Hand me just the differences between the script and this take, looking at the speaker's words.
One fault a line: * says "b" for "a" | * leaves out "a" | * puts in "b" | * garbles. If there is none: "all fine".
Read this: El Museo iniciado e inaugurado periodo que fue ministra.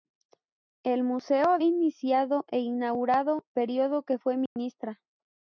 all fine